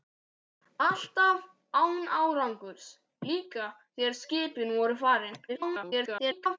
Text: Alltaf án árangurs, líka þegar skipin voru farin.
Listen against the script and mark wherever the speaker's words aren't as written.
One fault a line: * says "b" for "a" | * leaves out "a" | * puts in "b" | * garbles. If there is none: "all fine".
* garbles